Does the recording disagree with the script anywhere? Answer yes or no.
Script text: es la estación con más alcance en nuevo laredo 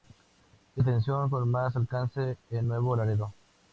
yes